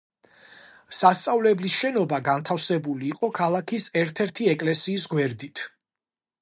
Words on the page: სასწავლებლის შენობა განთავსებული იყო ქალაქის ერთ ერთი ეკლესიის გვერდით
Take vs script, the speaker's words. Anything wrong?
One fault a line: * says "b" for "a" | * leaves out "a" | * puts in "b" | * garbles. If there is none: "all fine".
all fine